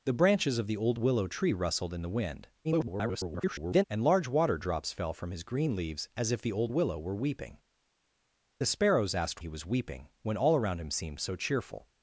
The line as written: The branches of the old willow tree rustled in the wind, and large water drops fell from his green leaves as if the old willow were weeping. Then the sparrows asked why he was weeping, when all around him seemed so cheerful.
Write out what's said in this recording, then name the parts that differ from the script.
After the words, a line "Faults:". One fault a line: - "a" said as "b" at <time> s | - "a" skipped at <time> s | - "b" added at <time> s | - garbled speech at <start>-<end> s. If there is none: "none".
The branches of the old willow tree rustled in the wind, [garbled] and large water drops fell from his green leaves as if the old willow were weeping. The sparrows asked he was weeping, when all around him seemed so cheerful.
Faults:
- garbled speech at 2.6-3.8 s
- "Then" skipped at 7.6 s
- "why" skipped at 9.4 s